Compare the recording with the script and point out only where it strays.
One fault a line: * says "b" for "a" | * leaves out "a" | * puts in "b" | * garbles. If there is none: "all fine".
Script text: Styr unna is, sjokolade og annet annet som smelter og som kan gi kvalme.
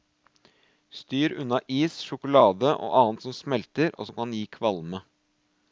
* leaves out "annet"